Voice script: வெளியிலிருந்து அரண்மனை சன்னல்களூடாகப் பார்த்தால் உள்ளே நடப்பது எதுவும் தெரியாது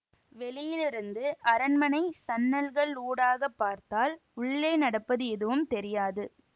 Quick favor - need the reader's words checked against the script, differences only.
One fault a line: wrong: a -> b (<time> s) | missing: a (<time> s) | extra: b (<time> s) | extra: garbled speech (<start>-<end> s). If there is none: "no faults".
no faults